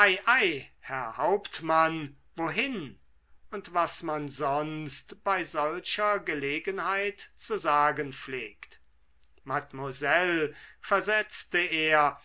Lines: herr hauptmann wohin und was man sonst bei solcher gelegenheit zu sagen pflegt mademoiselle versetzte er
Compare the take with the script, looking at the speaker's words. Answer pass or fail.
pass